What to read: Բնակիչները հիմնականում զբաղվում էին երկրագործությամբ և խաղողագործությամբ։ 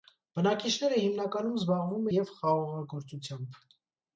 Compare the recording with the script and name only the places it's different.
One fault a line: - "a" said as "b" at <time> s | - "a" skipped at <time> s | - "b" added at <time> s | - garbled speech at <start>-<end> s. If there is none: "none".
- "էին երկրագործությամբ" skipped at 2.1 s